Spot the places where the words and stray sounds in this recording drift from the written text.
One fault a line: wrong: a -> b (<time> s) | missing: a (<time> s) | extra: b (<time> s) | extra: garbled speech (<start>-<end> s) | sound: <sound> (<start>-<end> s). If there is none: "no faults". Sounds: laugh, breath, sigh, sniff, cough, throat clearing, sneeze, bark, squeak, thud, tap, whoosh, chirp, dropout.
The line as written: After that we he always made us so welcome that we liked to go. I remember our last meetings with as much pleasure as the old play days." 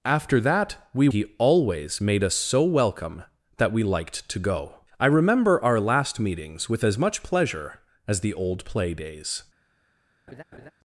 sound: laugh (10.3-10.7 s)